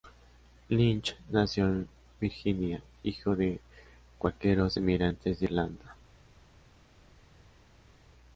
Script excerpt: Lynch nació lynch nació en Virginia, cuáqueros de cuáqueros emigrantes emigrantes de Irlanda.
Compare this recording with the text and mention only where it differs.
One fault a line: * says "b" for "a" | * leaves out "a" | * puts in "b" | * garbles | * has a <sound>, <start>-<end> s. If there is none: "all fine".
* leaves out "lynch nació"
* says "hijo" for "cuáqueros"
* leaves out "emigrantes"